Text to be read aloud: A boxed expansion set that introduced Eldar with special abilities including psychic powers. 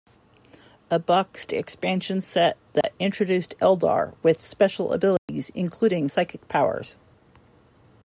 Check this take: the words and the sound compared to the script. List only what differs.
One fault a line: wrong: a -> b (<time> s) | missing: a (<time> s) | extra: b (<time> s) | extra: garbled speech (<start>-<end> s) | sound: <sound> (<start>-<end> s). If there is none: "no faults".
sound: dropout (2.8-2.8 s)
sound: dropout (5.2-5.3 s)